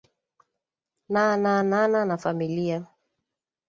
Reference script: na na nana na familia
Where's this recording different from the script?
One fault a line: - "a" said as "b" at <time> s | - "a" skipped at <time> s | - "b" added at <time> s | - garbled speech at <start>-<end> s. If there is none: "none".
none